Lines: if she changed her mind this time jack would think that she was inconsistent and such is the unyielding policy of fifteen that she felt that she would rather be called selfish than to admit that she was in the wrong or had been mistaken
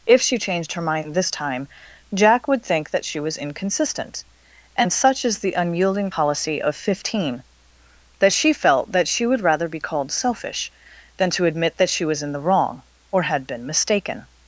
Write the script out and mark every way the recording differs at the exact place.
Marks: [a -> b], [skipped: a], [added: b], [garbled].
if she changed her mind this time jack would think that she was inconsistent and such is the unyielding policy of fifteen that she felt that she would rather be called selfish than to admit that she was in the wrong or had been mistaken